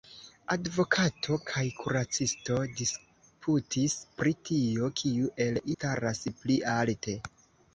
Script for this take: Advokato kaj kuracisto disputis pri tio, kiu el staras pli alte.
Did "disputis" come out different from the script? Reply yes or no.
no